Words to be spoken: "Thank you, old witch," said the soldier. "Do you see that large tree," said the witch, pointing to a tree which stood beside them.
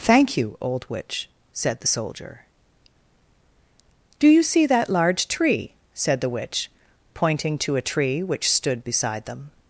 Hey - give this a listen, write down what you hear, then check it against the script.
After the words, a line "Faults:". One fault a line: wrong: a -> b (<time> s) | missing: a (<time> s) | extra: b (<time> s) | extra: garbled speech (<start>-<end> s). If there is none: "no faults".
"Thank you, old witch," said the soldier. "Do you see that large tree," said the witch, pointing to a tree which stood beside them.
Faults:
no faults